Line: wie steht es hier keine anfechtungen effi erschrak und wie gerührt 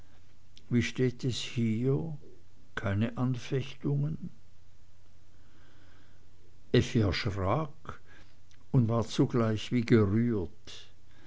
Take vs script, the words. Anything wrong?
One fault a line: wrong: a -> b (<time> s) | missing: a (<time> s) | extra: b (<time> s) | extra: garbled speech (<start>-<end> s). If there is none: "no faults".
extra: war zugleich (8.9 s)